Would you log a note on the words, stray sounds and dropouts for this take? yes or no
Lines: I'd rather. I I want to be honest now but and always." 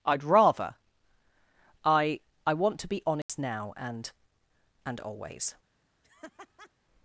yes